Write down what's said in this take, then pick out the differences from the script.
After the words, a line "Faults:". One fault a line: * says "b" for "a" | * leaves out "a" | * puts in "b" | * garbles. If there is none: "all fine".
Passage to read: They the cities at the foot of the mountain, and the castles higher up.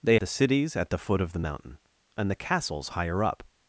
They the cities at the foot of the mountain, and the castles higher up.
Faults:
all fine